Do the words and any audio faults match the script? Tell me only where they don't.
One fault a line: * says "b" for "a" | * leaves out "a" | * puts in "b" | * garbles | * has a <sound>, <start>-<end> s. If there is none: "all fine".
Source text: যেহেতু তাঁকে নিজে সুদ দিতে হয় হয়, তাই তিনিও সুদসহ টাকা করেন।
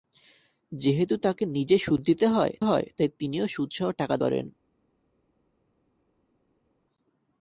all fine